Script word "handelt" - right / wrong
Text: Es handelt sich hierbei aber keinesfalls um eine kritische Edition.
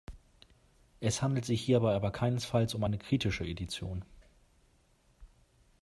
right